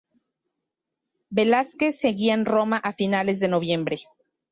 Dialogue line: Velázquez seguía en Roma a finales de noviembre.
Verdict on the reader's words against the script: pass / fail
pass